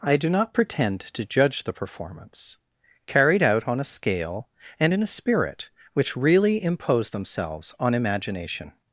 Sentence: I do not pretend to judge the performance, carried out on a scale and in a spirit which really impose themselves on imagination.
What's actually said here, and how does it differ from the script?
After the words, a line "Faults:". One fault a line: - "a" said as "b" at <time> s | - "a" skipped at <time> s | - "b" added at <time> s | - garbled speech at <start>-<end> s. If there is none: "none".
I do not pretend to judge the performance, carried out on a scale and in a spirit which really impose themselves on imagination.
Faults:
none